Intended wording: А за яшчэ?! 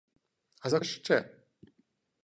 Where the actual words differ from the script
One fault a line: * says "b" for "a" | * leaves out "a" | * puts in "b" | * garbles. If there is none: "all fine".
all fine